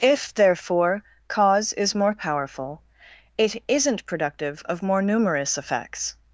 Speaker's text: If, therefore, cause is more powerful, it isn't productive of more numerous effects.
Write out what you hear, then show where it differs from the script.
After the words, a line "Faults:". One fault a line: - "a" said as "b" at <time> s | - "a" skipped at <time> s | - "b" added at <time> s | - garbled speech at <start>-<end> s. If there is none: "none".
If, therefore, cause is more powerful, it isn't productive of more numerous effects.
Faults:
none